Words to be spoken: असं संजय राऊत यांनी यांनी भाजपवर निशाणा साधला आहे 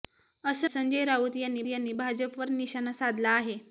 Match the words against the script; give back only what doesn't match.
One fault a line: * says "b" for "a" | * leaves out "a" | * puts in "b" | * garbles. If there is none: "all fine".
all fine